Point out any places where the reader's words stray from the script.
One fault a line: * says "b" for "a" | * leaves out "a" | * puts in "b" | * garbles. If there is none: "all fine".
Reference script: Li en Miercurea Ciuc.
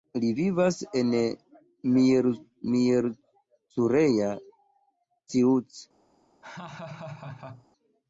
* puts in "vivas"